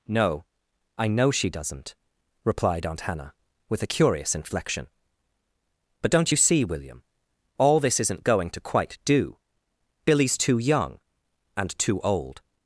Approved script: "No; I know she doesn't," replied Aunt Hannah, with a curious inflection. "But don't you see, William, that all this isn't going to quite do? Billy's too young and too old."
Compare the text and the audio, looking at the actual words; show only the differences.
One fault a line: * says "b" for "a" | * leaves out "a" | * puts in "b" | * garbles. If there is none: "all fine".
* leaves out "that"